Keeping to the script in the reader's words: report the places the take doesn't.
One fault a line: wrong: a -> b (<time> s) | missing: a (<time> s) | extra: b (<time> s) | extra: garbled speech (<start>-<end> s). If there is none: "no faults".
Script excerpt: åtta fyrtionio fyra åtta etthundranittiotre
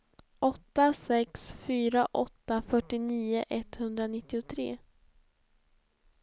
wrong: fyrtionio -> sex (0.9 s)
extra: fyrtionio (2.6 s)